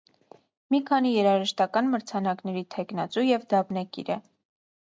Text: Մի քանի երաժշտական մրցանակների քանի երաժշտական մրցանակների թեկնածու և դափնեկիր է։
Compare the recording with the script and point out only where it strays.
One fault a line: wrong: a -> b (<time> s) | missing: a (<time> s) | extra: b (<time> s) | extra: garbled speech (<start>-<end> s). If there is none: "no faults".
missing: քանի երաժշտական մրցանակների (2.6 s)